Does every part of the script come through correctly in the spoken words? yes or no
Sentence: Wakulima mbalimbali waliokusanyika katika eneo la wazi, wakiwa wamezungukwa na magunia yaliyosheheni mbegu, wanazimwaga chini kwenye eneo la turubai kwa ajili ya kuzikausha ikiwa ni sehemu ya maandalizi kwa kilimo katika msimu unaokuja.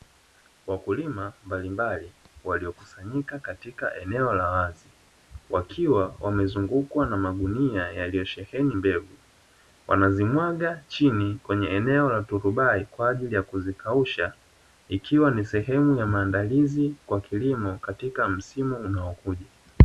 yes